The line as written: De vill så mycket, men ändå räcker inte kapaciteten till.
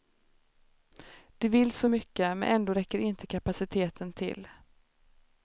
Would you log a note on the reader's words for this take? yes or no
no